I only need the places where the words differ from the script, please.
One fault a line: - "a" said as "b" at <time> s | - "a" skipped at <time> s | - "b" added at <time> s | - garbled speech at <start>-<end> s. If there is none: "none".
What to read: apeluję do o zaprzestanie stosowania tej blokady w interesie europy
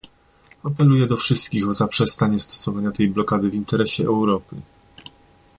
- "wszystkich" added at 1.2 s